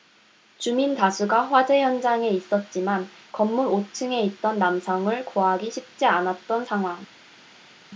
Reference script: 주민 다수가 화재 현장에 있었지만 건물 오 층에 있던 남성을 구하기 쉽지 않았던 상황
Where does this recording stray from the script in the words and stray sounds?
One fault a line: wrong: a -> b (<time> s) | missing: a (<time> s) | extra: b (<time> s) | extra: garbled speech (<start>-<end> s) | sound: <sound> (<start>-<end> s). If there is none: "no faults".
no faults